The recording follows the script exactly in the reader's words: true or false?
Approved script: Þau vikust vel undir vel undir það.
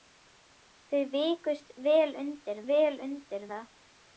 true